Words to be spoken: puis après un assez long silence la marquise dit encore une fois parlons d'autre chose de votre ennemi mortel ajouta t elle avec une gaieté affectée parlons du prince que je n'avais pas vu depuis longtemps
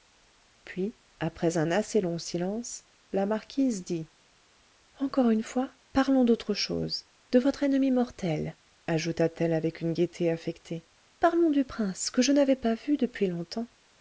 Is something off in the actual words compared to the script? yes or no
no